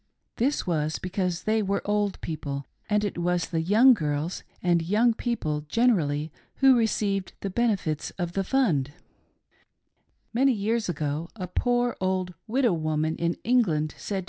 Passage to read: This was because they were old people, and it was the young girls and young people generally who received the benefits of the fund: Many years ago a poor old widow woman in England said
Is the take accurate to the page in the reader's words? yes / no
yes